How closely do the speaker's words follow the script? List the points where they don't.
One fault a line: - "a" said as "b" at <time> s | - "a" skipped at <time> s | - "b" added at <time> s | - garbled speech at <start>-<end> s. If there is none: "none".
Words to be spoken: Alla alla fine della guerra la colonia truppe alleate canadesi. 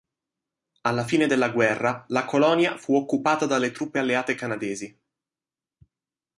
- "alla" skipped at 1.1 s
- "fu occupata dalle" added at 2.8 s